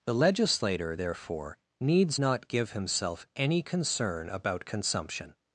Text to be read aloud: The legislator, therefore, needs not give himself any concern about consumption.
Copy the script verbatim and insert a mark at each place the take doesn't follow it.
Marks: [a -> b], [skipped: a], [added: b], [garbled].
The legislator, therefore, needs not give himself any concern about consumption.